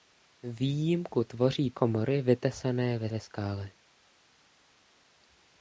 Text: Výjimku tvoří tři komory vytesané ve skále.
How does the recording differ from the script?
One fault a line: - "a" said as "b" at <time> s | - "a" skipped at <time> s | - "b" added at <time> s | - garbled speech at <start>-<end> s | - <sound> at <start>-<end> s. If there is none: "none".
- "tři" skipped at 1.7 s
- "ve" added at 3.1 s